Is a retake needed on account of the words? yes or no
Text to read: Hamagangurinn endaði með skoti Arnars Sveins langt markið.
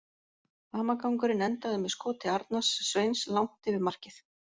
yes